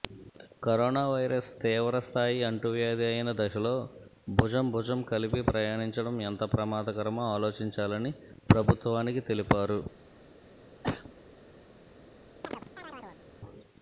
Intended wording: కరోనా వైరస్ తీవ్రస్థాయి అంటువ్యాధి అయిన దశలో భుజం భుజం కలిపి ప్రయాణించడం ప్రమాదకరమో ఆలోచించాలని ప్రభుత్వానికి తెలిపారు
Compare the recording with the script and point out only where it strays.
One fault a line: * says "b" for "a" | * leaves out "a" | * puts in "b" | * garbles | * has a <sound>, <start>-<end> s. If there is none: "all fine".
* puts in "ఎంత"
* has a cough, 10.8-11.1 s
* has a chirp, 12.4-13.2 s